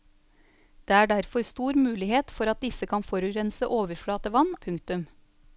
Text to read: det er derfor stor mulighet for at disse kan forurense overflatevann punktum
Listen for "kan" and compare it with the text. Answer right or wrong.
right